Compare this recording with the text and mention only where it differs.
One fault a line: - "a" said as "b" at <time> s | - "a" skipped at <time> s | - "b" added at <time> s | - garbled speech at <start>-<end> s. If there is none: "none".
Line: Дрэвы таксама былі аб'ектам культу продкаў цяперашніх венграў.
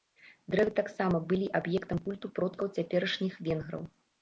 none